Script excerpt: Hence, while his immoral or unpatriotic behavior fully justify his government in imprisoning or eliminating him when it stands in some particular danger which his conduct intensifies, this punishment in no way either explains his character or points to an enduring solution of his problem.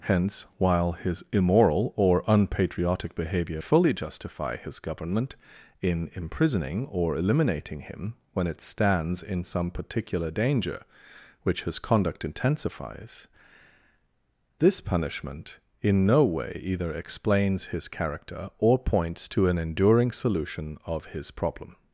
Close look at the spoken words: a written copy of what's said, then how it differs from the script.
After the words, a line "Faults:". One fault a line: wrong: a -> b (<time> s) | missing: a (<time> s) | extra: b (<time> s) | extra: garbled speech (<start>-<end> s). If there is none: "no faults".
Hence, while his immoral or unpatriotic behavior fully justify his government in imprisoning or eliminating him when it stands in some particular danger which his conduct intensifies, this punishment in no way either explains his character or points to an enduring solution of his problem.
Faults:
no faults